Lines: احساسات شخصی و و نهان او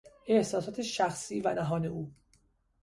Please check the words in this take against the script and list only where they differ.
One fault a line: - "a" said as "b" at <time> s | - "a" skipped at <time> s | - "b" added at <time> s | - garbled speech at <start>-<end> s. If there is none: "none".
- "و" skipped at 1.6 s